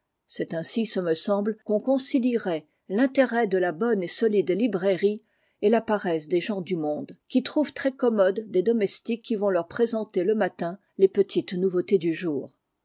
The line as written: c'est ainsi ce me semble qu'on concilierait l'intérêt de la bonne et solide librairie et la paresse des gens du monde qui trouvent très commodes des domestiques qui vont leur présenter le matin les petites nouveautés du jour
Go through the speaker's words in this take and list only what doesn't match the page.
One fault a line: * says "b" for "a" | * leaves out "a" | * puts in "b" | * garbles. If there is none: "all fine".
all fine